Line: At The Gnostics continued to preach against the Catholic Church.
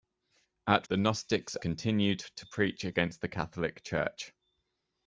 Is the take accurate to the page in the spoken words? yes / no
yes